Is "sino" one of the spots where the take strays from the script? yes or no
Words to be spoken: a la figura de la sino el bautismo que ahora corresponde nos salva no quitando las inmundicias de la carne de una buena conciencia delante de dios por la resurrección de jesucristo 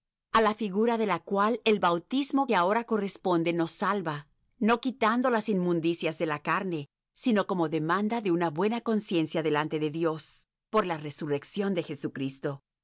yes